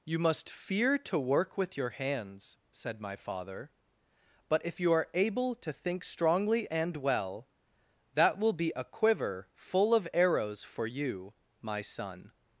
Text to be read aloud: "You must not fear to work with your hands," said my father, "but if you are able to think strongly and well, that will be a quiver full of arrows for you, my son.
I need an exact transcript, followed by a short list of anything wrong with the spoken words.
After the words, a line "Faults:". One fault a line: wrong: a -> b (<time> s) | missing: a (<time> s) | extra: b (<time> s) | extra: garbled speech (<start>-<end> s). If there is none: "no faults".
"You must fear to work with your hands," said my father, "but if you are able to think strongly and well, that will be a quiver full of arrows for you, my son.
Faults:
missing: not (0.5 s)